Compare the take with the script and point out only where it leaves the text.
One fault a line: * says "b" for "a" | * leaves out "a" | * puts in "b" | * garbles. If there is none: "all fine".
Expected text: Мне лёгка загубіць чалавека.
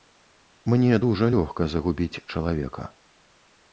* puts in "дужа"